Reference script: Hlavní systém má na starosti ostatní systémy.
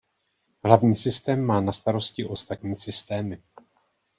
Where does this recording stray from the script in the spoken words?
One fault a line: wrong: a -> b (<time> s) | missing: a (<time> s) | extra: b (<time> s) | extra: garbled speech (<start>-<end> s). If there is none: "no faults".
no faults